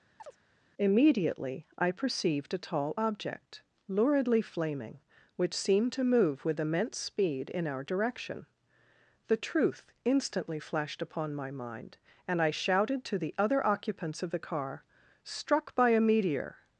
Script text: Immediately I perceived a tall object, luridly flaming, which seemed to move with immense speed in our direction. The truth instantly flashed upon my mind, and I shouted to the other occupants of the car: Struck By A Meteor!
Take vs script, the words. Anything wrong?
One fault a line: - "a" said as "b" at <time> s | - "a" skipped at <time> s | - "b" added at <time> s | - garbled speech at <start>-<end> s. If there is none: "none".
none